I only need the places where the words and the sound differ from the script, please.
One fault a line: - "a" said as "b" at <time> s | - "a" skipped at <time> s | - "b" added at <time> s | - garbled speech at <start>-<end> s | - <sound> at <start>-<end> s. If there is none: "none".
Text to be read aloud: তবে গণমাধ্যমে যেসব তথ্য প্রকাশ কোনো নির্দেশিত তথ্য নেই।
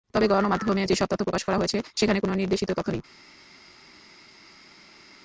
- "করা হয়েছে সেখানে" added at 1.4 s